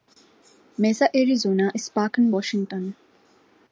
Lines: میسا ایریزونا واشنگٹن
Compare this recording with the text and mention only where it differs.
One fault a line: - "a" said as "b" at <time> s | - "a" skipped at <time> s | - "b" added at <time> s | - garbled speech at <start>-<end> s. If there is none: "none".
- "اسپاکن" added at 1.7 s